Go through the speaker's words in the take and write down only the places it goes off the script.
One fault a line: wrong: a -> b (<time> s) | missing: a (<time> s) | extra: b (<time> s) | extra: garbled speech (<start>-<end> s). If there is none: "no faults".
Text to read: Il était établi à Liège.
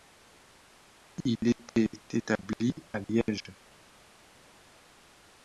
no faults